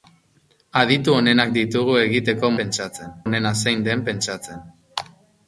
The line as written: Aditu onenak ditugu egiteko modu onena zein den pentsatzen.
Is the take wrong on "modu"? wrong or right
wrong